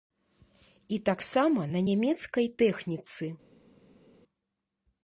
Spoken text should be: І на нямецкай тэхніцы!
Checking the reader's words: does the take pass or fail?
fail